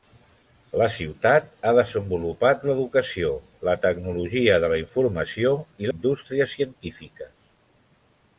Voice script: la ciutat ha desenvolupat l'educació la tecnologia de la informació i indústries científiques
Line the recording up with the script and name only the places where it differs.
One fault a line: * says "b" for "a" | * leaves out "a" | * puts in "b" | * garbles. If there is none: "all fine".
all fine